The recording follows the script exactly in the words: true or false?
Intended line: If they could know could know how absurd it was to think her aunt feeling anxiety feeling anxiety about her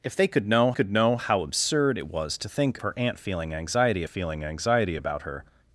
true